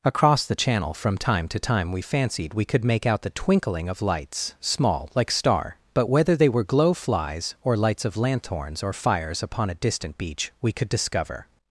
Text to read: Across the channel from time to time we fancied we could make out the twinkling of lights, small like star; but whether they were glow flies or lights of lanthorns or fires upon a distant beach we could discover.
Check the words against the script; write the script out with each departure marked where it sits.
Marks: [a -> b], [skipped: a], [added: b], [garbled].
Across the channel from time to time we fancied we could make out the twinkling of lights, small like star; but whether they were glow flies or lights of lanthorns or fires upon a distant beach we could discover.